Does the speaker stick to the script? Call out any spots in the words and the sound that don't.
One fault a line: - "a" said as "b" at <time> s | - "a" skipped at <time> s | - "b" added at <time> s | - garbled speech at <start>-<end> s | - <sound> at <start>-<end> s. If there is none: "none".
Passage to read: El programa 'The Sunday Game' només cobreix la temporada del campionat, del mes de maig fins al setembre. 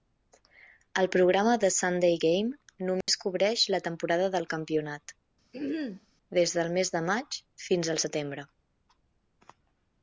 - dropout at 3.0-3.1 s
- throat clearing at 5.5-6.1 s
- "des" added at 6.4 s